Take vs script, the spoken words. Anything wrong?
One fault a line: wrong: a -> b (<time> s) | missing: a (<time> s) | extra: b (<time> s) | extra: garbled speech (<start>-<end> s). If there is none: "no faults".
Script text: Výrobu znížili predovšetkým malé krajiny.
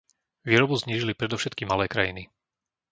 no faults